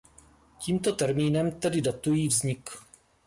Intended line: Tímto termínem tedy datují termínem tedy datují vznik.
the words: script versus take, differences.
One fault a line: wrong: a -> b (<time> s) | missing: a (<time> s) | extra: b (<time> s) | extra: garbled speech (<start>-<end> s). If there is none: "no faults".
missing: termínem tedy datují (2.3 s)